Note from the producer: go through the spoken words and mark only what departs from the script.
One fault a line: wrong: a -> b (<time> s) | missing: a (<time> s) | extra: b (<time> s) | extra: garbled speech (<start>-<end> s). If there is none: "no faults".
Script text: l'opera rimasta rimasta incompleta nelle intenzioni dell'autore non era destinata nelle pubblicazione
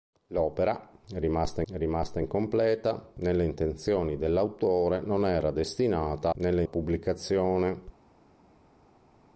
no faults